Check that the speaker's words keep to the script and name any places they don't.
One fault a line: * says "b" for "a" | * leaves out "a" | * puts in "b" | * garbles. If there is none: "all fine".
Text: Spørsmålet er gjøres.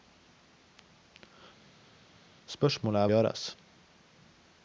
all fine